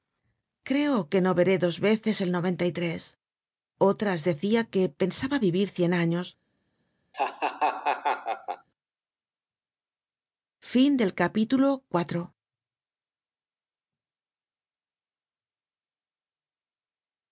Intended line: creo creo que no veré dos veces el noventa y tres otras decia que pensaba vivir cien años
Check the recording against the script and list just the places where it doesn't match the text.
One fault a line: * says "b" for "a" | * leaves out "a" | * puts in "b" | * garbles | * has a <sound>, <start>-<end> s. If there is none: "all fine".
* leaves out "creo"
* has a laugh, 7.1-8.7 s